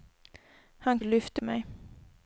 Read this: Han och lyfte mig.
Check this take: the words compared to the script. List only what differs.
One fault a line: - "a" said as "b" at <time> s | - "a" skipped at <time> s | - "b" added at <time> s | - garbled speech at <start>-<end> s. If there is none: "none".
none